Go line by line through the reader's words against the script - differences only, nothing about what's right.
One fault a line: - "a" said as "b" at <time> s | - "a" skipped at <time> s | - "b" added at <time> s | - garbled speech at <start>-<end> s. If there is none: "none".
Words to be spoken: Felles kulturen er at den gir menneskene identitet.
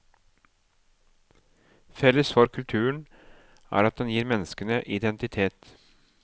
- "for" added at 2.3 s